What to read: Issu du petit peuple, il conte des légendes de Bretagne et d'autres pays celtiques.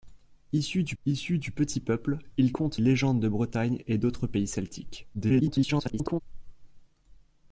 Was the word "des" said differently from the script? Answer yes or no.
yes